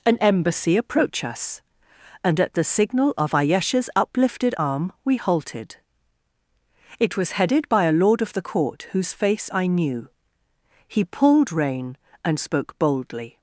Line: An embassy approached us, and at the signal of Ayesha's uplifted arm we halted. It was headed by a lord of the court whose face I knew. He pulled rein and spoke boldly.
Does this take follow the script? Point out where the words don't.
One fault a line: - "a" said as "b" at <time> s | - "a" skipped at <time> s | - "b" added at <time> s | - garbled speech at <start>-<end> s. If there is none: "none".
- "approached" said as "approach" at 0.8 s